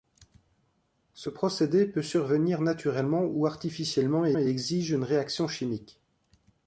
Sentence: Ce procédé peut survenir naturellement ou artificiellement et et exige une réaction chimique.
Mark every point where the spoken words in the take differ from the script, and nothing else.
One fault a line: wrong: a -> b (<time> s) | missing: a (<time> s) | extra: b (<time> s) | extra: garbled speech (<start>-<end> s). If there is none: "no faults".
no faults